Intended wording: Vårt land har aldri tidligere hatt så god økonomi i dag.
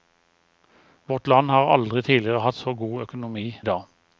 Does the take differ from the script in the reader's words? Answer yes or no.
no